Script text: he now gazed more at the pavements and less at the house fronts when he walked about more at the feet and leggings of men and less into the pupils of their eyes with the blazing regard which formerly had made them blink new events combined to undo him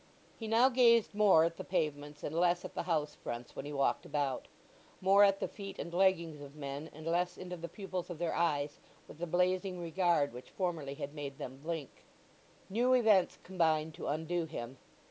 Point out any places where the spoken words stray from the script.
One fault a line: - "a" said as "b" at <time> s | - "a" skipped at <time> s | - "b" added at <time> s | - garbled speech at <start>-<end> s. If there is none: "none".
none